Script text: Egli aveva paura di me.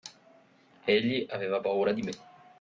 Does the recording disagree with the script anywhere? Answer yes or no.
no